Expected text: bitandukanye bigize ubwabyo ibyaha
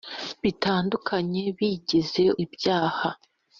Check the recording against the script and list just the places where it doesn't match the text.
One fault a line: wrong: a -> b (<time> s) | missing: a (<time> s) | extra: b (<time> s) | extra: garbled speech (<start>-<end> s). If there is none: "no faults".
missing: ubwabyo (2.2 s)